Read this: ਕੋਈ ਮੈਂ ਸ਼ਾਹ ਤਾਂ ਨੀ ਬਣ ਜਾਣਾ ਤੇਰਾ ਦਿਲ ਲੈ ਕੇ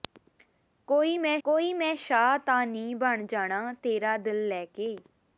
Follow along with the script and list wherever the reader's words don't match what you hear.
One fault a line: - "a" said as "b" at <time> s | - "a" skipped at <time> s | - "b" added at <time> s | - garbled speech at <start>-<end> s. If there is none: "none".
- "ਕੋਈ ਮੈਂ" added at 1.4 s